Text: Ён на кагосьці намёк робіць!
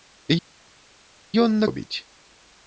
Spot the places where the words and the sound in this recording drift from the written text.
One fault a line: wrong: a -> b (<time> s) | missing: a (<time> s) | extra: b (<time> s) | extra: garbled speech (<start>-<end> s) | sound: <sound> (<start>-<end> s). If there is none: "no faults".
missing: кагосьці намёк (1.7 s)